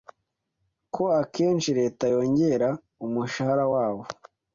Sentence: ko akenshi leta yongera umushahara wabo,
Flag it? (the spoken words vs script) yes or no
no